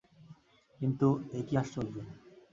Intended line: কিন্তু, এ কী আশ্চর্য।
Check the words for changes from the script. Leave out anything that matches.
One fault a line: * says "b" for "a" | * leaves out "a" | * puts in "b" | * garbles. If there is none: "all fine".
all fine